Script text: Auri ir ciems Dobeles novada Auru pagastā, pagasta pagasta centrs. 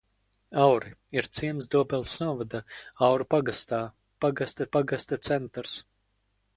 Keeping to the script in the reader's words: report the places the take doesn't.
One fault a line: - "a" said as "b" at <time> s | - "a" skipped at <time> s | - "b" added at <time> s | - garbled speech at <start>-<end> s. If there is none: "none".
none